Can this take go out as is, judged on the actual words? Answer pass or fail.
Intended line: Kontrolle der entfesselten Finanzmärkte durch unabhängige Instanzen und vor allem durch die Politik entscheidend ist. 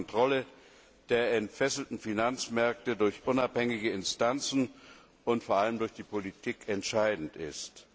pass